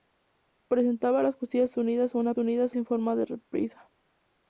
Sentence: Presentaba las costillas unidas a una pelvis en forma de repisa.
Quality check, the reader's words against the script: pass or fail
fail